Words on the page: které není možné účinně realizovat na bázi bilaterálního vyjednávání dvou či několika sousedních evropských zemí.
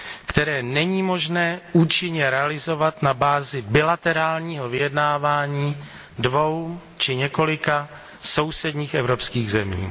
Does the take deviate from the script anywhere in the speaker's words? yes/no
no